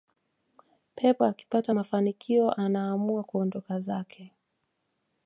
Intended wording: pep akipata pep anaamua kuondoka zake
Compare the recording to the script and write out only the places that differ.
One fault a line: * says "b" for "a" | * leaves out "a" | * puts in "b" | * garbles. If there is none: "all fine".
* says "mafanikio" for "pep"